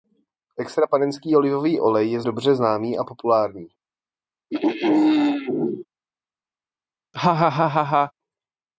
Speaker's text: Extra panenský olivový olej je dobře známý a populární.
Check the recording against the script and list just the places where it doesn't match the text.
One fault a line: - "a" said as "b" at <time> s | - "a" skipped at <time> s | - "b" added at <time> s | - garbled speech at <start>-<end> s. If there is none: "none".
none